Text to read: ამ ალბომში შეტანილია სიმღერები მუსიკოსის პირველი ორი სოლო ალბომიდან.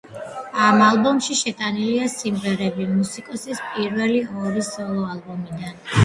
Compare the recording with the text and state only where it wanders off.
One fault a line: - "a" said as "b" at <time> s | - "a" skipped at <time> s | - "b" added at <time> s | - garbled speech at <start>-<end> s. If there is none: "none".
none